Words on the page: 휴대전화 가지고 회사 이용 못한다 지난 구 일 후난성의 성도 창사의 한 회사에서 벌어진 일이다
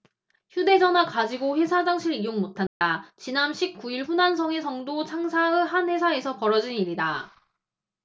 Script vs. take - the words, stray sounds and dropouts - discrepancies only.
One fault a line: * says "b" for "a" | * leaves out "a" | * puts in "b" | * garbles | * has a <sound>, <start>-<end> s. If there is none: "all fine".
* puts in "화장실"
* has a dropout, 2.7-2.8 s
* puts in "십"